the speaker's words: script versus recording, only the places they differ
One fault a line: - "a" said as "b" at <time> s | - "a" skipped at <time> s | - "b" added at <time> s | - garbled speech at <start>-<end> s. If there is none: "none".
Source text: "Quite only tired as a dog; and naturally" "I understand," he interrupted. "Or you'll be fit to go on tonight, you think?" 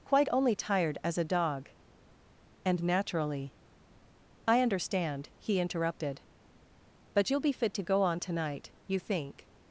- "Or" said as "But" at 7.1 s